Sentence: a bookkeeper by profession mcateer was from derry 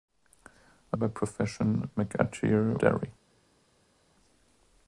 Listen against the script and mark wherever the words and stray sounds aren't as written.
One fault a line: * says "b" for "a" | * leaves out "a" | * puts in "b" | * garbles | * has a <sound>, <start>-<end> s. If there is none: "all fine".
* leaves out "bookkeeper"
* leaves out "was from"